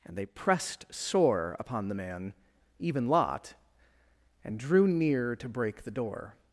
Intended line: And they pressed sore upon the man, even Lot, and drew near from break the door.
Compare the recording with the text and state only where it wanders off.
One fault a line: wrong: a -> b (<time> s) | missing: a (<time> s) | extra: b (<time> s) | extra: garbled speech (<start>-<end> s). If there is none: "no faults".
wrong: from -> to (5.3 s)